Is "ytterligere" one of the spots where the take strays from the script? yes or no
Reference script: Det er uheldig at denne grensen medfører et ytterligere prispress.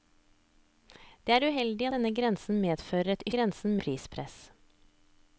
yes